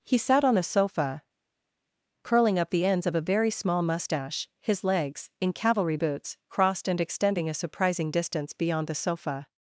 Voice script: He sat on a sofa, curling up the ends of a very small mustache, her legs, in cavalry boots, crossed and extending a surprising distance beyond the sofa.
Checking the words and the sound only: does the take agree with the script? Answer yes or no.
no